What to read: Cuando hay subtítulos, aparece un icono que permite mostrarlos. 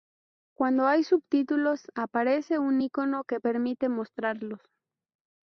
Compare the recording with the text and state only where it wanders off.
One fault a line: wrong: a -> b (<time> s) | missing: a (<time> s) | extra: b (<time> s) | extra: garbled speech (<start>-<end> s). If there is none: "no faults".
no faults